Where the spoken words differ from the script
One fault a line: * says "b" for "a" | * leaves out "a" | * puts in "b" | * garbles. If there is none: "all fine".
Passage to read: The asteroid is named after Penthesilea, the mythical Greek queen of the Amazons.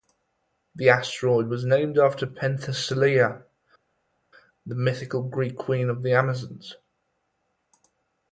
* says "was" for "is"